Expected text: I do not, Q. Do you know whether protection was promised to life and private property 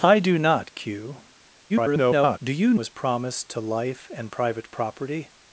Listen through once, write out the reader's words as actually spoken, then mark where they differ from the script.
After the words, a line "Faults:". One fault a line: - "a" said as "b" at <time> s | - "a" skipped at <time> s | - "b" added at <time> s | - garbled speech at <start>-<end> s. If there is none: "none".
I do not, Q. [garbled] Do you was promised to life and private property
Faults:
- garbled speech at 1.7-2.4 s
- "know whether protection" skipped at 2.7 s